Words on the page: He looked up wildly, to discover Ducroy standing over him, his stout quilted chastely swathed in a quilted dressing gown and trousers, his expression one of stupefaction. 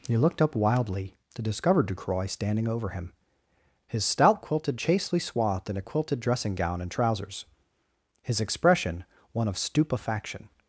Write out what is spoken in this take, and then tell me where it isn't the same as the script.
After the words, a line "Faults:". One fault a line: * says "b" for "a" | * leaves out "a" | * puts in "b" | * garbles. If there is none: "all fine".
He looked up wildly, to discover Ducroy standing over him, his stout quilted chastely swathed in a quilted dressing gown and trousers, his expression one of stupefaction.
Faults:
all fine